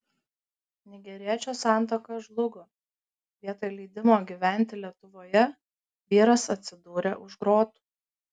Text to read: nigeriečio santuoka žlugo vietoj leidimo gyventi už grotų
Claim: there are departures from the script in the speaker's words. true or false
true